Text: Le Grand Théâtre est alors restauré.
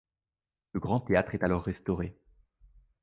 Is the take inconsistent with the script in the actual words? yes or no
no